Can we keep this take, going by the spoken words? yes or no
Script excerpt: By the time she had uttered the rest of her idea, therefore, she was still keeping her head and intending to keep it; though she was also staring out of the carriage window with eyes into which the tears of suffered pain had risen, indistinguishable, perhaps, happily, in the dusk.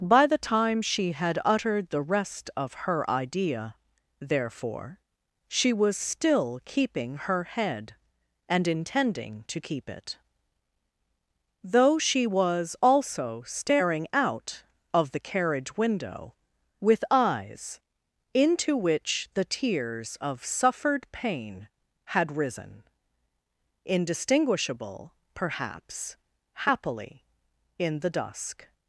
yes